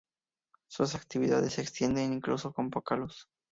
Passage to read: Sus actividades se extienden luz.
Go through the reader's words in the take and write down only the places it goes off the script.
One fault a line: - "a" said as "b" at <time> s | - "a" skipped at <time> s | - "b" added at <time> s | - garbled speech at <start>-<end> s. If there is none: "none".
- "incluso con poca" added at 2.1 s